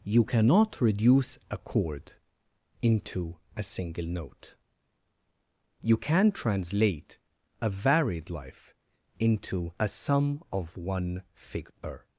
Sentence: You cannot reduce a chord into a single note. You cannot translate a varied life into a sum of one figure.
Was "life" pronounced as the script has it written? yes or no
yes